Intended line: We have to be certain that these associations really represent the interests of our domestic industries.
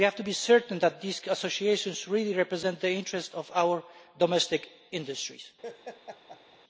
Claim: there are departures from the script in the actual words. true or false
false